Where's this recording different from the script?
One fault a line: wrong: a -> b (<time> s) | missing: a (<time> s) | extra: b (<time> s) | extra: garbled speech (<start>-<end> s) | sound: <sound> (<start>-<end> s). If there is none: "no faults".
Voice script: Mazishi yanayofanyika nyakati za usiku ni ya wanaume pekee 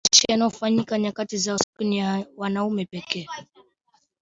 sound: dropout (1.6-1.7 s)